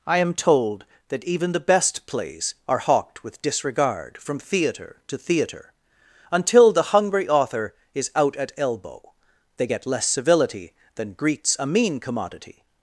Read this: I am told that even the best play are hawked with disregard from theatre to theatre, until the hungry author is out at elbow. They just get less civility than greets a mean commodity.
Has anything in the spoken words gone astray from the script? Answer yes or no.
yes